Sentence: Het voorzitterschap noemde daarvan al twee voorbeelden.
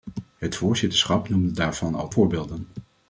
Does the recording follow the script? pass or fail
fail